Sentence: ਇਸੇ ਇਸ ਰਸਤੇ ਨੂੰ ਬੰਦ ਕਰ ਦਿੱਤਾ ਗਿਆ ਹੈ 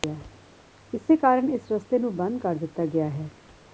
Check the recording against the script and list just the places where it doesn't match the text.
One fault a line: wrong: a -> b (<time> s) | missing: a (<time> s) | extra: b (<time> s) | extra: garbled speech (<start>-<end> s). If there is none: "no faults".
extra: ਕਾਰਨ (1.2 s)